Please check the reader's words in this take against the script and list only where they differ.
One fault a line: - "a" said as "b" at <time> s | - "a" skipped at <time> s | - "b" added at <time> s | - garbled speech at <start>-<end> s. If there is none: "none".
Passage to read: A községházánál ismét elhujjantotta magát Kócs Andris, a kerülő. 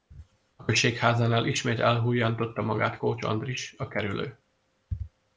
none